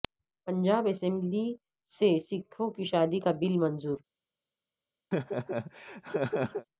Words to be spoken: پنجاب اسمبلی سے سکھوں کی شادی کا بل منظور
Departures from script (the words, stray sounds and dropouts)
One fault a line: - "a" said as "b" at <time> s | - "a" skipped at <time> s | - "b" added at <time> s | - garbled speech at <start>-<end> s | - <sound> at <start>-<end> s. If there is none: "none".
- laugh at 5.1-6.7 s